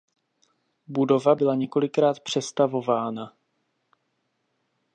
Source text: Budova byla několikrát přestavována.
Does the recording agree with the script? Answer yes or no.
yes